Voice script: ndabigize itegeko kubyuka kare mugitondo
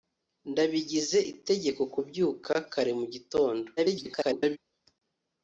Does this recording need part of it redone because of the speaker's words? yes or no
yes